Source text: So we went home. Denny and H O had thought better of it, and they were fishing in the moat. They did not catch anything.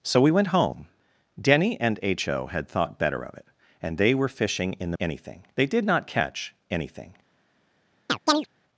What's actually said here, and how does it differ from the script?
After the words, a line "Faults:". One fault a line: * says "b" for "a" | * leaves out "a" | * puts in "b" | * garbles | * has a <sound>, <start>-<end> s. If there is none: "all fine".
So we went home. Denny and H O had thought better of it, and they were fishing in the anything. They did not catch anything.
Faults:
* says "anything" for "moat"
* has a chirp, 8.1-8.5 s